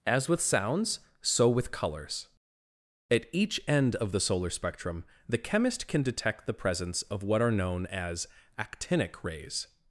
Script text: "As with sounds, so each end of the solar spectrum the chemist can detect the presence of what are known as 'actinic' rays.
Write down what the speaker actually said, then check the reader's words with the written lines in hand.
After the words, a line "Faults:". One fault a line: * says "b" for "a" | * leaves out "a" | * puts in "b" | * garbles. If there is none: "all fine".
"As with sounds, so with colors. At each end of the solar spectrum the chemist can detect the presence of what are known as 'actinic' rays.
Faults:
* puts in "with colors At"